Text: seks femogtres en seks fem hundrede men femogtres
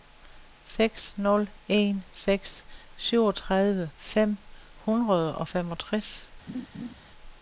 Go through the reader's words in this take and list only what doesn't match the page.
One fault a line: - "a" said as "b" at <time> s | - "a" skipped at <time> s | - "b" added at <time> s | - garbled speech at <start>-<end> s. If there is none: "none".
- "femogtres" said as "nul" at 1.2 s
- "syvogtredive" added at 3.0 s
- "men" said as "og" at 5.4 s